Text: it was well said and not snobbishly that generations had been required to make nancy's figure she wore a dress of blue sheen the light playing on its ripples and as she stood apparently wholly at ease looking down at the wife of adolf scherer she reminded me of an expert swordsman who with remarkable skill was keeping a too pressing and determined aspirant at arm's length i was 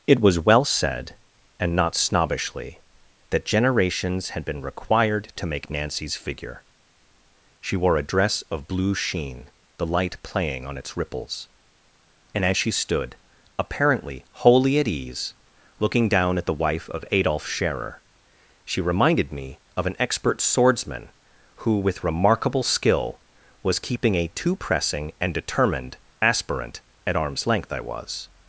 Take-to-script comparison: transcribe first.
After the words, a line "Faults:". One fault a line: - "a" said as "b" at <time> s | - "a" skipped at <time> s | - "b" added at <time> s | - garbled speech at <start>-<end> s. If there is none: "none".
it was well said and not snobbishly that generations had been required to make nancy's figure she wore a dress of blue sheen the light playing on its ripples and as she stood apparently wholly at ease looking down at the wife of adolf scherer she reminded me of an expert swordsman who with remarkable skill was keeping a too pressing and determined aspirant at arm's length i was
Faults:
none